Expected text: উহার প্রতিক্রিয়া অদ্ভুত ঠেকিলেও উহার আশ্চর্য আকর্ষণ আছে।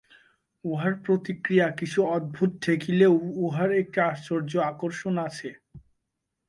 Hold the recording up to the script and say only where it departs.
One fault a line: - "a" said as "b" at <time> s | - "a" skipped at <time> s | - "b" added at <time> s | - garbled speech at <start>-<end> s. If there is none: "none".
- "কিছু" added at 1.8 s
- "একটি" added at 3.8 s